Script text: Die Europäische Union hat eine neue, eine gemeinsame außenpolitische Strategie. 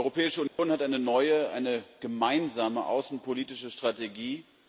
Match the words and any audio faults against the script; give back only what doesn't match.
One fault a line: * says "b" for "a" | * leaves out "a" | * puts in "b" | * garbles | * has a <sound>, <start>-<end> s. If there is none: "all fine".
* has a dropout, 0.5-0.6 s